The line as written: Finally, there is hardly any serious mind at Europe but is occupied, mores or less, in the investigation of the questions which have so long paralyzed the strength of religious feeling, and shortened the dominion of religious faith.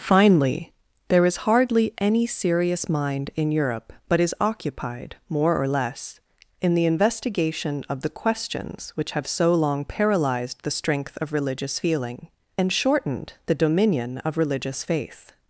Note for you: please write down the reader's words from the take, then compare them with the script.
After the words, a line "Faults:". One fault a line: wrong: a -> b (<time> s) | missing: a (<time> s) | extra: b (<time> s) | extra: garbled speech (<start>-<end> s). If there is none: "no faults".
Finally, there is hardly any serious mind in Europe but is occupied, more or less, in the investigation of the questions which have so long paralyzed the strength of religious feeling, and shortened the dominion of religious faith.
Faults:
wrong: at -> in (3.4 s)
wrong: mores -> more (5.3 s)